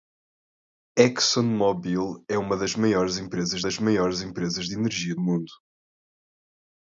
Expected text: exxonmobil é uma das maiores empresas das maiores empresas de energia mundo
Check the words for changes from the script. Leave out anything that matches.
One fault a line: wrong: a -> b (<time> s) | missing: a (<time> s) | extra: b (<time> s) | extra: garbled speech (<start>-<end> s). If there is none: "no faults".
no faults